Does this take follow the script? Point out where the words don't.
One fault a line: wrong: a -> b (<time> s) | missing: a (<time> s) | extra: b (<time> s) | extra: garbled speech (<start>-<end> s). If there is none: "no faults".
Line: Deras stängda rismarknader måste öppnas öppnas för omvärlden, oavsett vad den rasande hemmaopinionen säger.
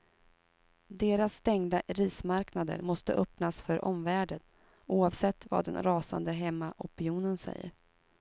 missing: öppnas (3.6 s)